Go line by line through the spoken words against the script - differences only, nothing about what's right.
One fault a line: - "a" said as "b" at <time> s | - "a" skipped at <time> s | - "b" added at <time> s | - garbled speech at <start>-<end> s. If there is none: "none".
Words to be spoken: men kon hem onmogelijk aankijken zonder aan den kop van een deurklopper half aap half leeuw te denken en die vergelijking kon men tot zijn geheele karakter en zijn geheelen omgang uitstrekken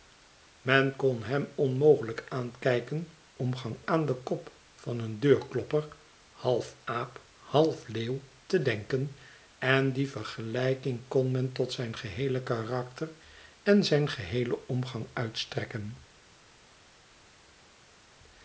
- "zonder" said as "omgang" at 3.4 s